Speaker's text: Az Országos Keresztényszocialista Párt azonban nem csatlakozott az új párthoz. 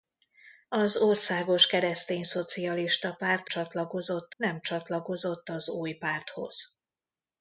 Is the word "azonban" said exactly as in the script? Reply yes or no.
no